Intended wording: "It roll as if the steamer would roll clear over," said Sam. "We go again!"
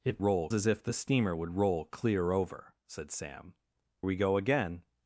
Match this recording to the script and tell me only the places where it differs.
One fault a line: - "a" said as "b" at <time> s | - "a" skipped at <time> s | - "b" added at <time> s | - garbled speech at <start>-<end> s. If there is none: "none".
none